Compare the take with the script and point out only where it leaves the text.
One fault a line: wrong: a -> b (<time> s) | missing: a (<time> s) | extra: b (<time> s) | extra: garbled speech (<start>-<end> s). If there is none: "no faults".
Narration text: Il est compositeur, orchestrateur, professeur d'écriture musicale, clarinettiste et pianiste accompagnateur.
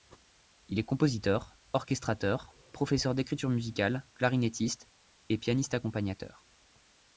no faults